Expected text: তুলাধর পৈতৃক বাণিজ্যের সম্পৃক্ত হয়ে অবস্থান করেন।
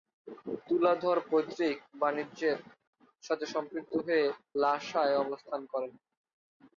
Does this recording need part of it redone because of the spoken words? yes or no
yes